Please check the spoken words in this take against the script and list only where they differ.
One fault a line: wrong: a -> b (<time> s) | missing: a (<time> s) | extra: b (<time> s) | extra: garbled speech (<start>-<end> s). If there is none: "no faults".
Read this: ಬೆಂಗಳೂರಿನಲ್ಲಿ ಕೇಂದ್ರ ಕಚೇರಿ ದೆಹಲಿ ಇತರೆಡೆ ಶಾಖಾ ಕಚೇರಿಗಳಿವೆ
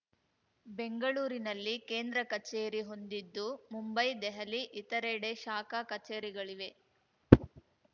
extra: ಹೊಂದಿದ್ದು ಮುಂಬೈ (2.9 s)